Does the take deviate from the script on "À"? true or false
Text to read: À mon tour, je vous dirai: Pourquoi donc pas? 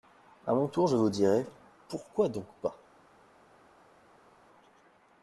false